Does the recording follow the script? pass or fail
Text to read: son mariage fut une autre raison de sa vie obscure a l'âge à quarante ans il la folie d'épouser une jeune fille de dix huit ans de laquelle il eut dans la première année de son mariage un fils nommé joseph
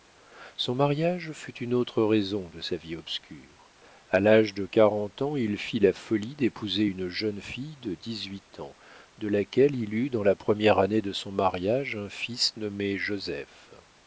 fail